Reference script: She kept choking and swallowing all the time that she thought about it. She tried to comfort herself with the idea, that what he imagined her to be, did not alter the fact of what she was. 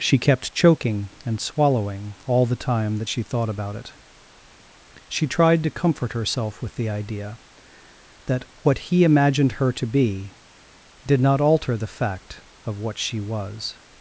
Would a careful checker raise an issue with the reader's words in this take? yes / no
no